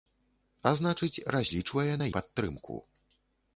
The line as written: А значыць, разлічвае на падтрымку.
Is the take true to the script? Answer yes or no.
yes